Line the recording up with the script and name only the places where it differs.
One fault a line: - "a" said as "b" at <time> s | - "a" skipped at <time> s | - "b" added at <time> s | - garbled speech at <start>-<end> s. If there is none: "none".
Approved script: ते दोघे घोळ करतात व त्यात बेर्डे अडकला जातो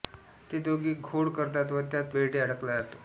none